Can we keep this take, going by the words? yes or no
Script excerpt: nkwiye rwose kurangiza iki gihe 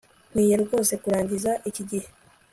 yes